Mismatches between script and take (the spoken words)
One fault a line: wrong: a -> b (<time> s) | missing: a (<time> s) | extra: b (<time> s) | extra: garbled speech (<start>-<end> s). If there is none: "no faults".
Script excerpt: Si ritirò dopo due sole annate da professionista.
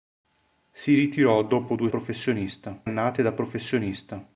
wrong: sole -> professionista (1.9 s)